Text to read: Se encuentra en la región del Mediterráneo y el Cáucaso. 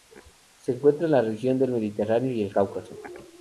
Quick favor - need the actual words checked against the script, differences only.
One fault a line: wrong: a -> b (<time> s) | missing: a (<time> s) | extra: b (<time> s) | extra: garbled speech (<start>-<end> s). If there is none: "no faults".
no faults